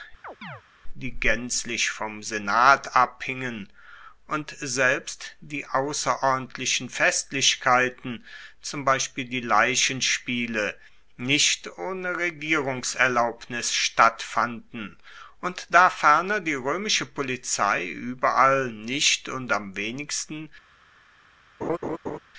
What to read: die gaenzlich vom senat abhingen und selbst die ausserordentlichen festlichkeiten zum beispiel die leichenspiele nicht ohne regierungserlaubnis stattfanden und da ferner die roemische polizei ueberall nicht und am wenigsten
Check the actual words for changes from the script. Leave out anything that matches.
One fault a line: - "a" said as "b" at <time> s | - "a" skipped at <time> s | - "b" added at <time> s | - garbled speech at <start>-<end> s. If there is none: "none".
none